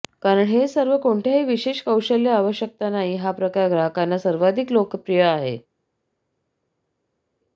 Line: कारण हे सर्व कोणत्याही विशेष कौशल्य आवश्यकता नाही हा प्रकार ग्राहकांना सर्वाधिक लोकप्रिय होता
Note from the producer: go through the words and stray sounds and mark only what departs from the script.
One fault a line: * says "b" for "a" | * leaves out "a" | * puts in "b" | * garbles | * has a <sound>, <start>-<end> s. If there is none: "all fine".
* says "आहे" for "होता"